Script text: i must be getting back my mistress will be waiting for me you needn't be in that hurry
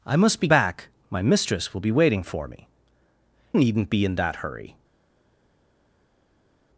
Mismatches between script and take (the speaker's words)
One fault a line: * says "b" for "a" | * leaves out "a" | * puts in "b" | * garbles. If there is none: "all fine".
* leaves out "getting"
* leaves out "you"